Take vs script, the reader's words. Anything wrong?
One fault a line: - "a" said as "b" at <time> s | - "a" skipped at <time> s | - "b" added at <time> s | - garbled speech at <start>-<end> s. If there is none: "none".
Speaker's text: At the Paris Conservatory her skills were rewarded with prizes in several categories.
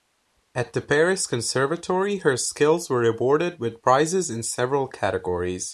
none